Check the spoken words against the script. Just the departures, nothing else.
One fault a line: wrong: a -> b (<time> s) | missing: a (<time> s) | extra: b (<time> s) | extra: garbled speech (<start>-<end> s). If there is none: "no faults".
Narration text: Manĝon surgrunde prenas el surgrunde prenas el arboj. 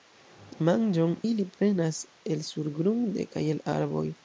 wrong: surgrunde -> ili (1.3 s)
wrong: prenas -> kaj (3.3 s)